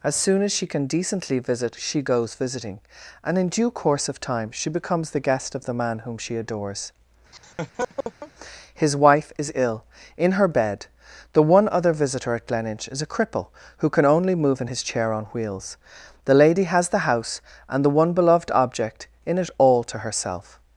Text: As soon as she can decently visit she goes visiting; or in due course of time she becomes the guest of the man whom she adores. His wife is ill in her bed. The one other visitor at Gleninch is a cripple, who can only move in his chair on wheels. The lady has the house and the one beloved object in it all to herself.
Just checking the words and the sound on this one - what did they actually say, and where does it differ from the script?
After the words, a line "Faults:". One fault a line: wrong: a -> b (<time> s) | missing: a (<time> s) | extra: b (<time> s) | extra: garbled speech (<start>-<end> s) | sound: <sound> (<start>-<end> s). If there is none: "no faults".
As soon as she can decently visit she goes visiting; and in due course of time she becomes the guest of the man whom she adores. His wife is ill in her bed. The one other visitor at Gleninch is a cripple, who can only move in his chair on wheels. The lady has the house and the one beloved object in it all to herself.
Faults:
wrong: or -> and (3.2 s)
sound: laugh (7.3-8.3 s)